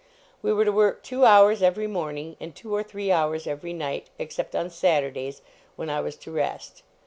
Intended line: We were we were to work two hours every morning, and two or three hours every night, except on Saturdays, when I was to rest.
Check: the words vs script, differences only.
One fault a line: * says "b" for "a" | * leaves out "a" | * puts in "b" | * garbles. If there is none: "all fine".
* leaves out "we were"